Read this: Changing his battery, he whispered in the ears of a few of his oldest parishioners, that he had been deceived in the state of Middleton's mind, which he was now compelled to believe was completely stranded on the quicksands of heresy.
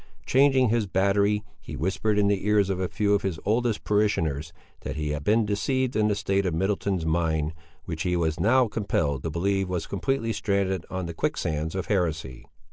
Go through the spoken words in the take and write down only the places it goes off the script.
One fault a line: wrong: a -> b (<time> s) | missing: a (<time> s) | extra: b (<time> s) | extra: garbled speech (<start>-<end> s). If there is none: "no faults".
no faults